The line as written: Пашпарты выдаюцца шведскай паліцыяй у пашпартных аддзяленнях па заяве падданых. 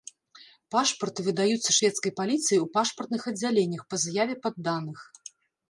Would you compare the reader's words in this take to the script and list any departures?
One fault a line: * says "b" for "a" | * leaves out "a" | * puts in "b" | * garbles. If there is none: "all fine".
all fine